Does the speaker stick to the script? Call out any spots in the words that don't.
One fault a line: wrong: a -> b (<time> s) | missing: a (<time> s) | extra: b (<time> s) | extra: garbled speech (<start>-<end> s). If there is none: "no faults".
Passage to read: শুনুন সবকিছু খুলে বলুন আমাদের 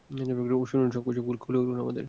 no faults